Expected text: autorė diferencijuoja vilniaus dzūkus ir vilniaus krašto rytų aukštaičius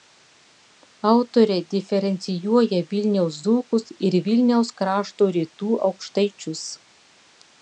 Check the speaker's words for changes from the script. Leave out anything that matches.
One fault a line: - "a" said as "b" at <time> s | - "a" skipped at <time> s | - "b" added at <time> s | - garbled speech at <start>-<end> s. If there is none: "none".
none